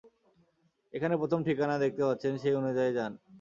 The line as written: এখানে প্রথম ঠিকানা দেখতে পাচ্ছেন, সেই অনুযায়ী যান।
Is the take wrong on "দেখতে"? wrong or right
right